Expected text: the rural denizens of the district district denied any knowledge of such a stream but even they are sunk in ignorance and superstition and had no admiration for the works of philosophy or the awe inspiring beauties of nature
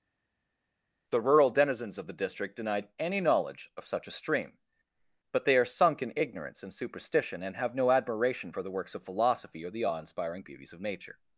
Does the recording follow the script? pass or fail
fail